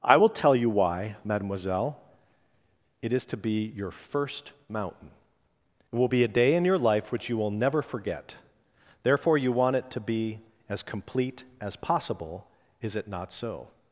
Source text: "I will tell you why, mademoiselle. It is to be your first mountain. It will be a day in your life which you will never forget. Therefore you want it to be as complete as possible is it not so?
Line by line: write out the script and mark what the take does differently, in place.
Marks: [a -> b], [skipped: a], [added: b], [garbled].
"I will tell you why, mademoiselle. It is to be your first mountain. It will be a day in your life which you will never forget. Therefore you want it to be as complete as possible is it not so?